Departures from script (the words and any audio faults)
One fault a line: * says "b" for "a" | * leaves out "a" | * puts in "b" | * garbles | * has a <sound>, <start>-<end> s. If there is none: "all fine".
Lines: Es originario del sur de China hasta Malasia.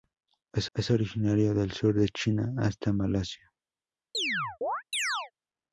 * puts in "es"
* has a chirp, 4.1-5.3 s